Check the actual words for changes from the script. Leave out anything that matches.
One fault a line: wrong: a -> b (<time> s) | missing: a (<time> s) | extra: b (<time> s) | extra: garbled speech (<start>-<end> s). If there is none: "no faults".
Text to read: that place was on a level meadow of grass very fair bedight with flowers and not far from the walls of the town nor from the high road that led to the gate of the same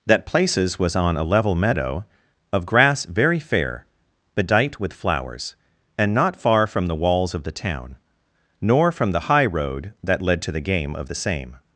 wrong: place -> places (0.2 s)
wrong: gate -> game (10.6 s)